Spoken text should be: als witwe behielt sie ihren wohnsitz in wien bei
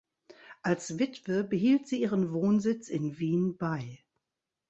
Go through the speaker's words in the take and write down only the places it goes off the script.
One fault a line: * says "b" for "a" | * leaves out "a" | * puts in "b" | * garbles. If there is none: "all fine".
all fine